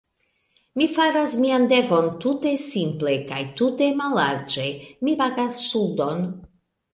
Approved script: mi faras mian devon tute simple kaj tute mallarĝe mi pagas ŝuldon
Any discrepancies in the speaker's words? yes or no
no